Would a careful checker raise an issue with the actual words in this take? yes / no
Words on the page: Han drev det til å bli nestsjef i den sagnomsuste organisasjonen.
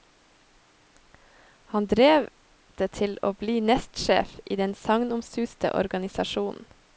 no